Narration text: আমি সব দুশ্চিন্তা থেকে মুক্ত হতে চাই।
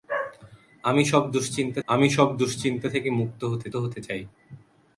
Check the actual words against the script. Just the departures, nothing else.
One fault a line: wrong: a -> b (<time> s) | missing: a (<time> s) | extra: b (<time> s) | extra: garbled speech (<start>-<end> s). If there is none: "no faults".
extra: আমি সব দুশ্চিন্তা (1.9 s)
extra: হতে (3.8 s)